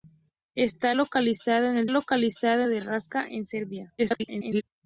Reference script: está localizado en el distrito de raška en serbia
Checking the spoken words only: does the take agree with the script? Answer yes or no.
no